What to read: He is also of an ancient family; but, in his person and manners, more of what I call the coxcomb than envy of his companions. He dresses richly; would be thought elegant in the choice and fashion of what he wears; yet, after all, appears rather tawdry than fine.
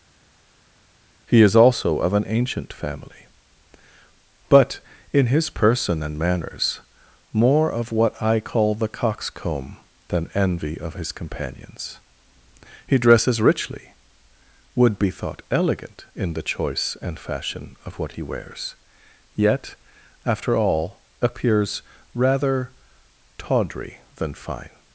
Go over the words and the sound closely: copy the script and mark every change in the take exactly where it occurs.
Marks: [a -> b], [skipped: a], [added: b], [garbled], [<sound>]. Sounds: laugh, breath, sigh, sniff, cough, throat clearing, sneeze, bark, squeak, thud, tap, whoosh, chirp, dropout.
He is also of an ancient family; but, in his person and manners, more of what I call the coxcomb than envy of his companions. He dresses richly; would be thought elegant in the choice and fashion of what he wears; yet, after all, appears rather tawdry than fine.